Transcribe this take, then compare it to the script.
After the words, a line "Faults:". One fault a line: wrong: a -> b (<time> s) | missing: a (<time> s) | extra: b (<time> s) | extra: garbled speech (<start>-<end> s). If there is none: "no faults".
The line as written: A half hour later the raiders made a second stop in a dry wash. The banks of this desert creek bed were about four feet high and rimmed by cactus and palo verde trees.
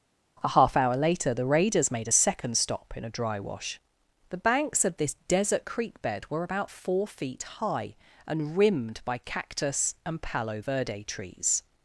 A half hour later the raiders made a second stop in a dry wash. The banks of this desert creek bed were about four feet high and rimmed by cactus and palo verde trees.
Faults:
no faults